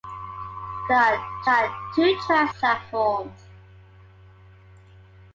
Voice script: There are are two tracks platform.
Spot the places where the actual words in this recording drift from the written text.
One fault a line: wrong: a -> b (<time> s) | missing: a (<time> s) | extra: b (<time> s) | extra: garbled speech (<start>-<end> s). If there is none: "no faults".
no faults